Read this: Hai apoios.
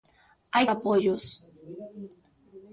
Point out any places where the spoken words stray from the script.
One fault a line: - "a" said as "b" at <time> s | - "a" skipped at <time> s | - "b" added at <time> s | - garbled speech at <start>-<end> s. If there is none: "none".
none